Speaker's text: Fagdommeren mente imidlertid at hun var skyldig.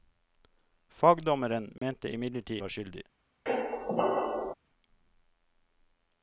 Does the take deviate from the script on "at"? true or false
true